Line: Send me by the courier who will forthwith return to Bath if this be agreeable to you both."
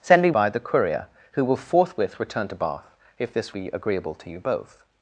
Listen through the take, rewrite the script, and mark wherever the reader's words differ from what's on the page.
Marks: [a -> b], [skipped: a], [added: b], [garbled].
Send me by the courier who will forthwith return to Bath if this be agreeable to you both."